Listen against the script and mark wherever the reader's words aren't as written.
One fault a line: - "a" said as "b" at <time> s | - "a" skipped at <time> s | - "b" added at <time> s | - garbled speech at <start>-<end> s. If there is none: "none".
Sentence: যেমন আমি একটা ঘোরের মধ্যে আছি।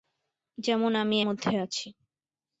- "একটা ঘোরের" skipped at 1.2 s